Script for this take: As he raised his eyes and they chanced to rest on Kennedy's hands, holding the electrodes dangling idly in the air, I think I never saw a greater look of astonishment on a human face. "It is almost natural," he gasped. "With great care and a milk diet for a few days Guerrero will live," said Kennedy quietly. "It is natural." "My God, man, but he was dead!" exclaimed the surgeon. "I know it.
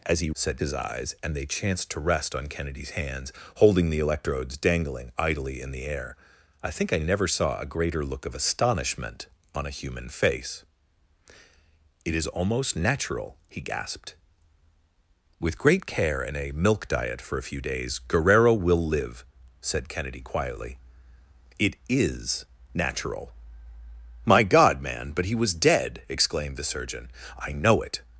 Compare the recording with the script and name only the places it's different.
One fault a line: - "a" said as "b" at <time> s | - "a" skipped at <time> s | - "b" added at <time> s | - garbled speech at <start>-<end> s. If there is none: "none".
- "raised" said as "said" at 0.3 s